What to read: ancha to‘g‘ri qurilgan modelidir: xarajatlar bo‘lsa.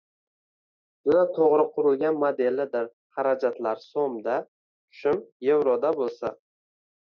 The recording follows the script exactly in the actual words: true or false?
false